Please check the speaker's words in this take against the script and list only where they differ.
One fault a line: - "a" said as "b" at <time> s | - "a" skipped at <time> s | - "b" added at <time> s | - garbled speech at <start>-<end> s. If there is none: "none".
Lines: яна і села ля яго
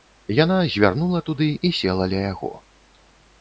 - "звярнула туды" added at 0.8 s